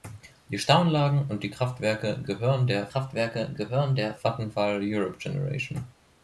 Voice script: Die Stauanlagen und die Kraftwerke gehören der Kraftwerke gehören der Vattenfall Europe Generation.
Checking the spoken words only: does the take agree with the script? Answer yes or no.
yes